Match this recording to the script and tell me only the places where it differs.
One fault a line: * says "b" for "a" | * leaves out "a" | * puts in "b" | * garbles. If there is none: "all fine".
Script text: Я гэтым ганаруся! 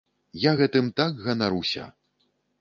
* puts in "так"